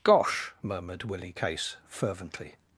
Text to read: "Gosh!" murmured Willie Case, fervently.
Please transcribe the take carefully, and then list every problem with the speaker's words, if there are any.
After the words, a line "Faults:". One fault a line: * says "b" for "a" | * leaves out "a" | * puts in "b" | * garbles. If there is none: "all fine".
"Gosh!" murmured Willie Case, fervently.
Faults:
all fine